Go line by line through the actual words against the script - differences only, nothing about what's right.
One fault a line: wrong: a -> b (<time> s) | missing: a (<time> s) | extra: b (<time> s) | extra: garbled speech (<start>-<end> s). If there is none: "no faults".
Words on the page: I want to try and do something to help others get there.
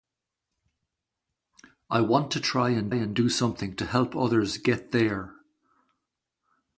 extra: and (2.9 s)